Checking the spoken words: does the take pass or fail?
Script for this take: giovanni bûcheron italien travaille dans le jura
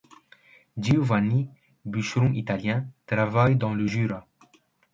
pass